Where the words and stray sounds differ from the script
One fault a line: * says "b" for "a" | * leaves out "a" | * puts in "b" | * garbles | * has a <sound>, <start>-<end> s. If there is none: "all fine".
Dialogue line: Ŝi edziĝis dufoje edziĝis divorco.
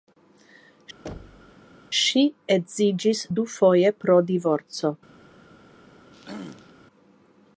* has a thud, 1.1-1.6 s
* says "pro" for "edziĝis"
* has a throat clearing, 6.1-6.7 s